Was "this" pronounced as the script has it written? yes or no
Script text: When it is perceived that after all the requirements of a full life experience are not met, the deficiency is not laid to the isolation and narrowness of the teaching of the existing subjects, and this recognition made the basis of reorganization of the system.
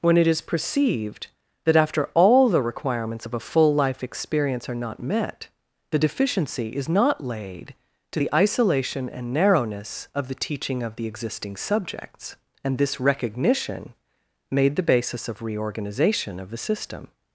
yes